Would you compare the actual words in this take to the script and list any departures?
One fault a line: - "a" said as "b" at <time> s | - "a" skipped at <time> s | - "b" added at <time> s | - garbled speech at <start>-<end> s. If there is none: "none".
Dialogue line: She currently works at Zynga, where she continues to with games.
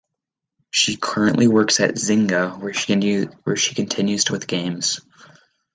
none